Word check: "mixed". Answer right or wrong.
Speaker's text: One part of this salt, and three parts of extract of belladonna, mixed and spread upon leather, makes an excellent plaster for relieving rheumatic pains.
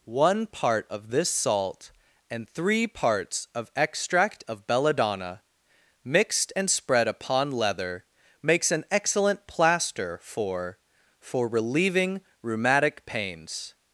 right